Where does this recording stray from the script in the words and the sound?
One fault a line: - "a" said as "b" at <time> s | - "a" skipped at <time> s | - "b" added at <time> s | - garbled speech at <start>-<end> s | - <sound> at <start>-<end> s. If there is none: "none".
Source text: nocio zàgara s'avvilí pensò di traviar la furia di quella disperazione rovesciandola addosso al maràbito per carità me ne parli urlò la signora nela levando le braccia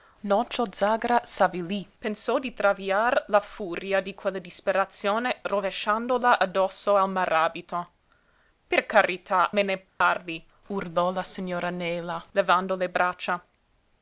- dropout at 9.9-10.0 s